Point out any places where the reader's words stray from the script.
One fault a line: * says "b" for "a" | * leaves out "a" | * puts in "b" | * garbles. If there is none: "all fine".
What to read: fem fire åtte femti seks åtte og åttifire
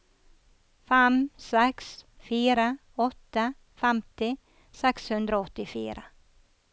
* puts in "seks"
* says "hundre" for "åtte"